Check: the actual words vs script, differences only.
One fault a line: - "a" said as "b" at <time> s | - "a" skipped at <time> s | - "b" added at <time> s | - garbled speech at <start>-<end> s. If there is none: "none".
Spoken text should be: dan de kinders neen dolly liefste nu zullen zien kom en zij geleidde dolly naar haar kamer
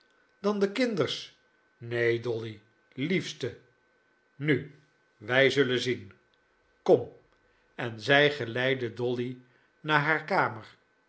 - "wij" added at 5.2 s